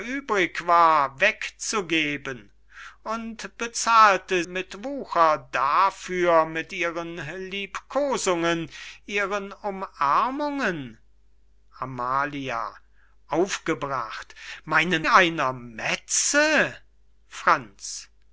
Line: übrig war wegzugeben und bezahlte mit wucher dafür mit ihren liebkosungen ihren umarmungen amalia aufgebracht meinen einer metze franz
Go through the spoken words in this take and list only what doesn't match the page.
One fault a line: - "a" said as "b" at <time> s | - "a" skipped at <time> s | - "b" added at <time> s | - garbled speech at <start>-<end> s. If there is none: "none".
none